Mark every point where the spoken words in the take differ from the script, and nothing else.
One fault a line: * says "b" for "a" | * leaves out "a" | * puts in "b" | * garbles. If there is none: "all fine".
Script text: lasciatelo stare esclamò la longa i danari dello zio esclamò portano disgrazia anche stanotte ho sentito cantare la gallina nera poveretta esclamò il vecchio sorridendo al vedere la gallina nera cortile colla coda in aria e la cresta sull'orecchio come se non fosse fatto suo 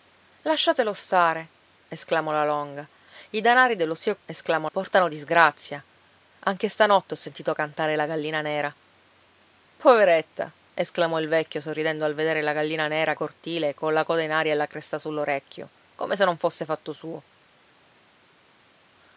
all fine